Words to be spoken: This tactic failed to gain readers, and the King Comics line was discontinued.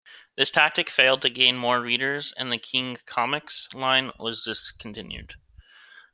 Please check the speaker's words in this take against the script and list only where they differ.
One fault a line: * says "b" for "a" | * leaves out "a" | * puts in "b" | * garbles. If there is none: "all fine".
* puts in "more"